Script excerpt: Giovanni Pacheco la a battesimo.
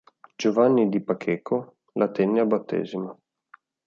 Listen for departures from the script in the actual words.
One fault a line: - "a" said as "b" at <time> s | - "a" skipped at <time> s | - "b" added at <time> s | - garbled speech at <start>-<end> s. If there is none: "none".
- "di" added at 0.9 s
- "tenne" added at 2.1 s